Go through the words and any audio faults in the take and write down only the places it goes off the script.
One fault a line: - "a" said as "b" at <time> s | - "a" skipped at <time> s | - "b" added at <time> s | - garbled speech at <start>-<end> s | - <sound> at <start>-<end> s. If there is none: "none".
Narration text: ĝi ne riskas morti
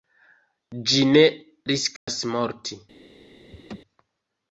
- dropout at 2.0-2.1 s
- laugh at 3.5-3.8 s